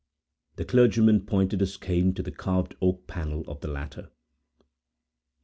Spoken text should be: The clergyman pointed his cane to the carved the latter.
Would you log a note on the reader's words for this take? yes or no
yes